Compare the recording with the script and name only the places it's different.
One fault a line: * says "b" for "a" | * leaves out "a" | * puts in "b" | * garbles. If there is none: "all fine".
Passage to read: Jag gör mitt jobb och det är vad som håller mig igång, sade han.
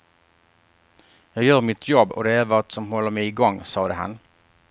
all fine